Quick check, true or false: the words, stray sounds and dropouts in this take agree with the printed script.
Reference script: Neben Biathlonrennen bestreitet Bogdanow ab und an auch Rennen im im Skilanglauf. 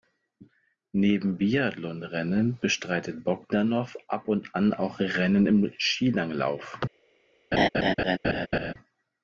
false